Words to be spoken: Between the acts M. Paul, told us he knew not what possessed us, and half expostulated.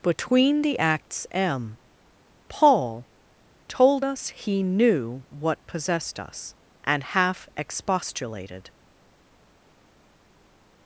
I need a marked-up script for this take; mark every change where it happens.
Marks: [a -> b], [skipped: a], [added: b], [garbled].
Between the acts M. Paul, told us he knew [skipped: not] what possessed us, and half expostulated.